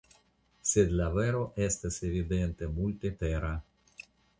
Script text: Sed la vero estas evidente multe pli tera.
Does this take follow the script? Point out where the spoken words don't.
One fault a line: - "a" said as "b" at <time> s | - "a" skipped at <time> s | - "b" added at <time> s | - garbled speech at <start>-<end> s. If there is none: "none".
- "pli" skipped at 3.1 s